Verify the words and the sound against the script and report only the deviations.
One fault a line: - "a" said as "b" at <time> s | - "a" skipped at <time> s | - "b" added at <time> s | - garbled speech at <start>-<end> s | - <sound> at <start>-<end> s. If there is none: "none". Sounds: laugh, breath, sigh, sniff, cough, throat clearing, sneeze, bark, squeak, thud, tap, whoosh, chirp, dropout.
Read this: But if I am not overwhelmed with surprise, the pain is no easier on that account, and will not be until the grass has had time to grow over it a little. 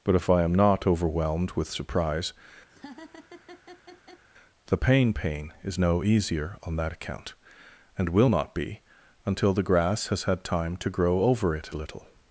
- laugh at 2.7-4.2 s
- "pain" added at 5.1 s